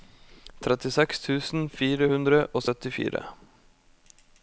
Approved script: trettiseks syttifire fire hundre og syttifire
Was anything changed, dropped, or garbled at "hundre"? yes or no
no